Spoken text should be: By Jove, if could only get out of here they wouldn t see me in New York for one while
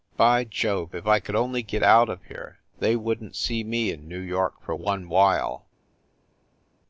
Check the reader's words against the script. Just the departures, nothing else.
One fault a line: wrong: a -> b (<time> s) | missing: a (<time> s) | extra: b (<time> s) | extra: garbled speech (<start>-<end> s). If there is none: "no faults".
extra: I (1.1 s)